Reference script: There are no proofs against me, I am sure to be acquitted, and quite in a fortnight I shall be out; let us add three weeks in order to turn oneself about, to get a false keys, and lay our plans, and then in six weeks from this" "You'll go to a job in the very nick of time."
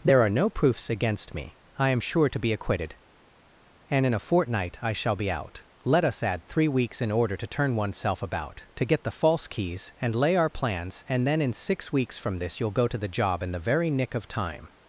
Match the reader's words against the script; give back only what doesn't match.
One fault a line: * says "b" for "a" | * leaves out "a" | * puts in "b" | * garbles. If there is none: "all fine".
* leaves out "quite"
* says "the" for "a"
* says "the" for "a"